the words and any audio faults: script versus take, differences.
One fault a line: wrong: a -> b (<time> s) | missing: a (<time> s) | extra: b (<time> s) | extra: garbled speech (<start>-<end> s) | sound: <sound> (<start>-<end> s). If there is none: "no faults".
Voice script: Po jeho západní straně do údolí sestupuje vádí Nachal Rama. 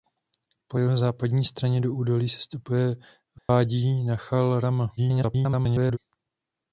sound: dropout (3.4-3.5 s)
extra: garbled speech (5.0-6.0 s)